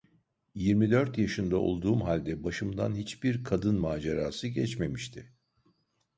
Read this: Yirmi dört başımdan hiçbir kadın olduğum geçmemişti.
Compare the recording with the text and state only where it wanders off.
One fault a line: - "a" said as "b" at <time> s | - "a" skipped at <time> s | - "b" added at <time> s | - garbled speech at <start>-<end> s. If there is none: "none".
- "yaşında olduğum halde" added at 1.2 s
- "olduğum" said as "macerası" at 3.8 s